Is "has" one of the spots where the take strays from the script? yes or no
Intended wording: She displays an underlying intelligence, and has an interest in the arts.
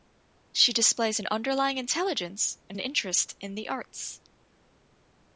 yes